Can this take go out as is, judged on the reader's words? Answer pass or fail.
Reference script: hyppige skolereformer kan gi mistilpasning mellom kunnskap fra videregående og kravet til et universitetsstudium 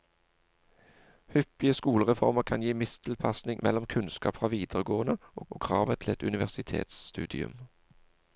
fail